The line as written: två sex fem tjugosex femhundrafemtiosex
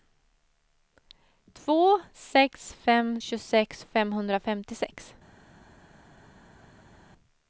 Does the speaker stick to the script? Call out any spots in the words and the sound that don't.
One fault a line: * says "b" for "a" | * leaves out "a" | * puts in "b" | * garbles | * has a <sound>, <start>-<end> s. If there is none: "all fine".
all fine